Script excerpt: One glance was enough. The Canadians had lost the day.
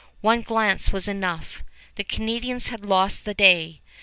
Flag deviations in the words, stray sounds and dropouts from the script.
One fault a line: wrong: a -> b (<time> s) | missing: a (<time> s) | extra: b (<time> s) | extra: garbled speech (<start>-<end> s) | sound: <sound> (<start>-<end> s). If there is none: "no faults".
no faults